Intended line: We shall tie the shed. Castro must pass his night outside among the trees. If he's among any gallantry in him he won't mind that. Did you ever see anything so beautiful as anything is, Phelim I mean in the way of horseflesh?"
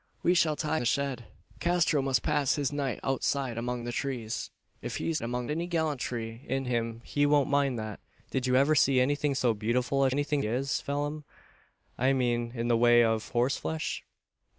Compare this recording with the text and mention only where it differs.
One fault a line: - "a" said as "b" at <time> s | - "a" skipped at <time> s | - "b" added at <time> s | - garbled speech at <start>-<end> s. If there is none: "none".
none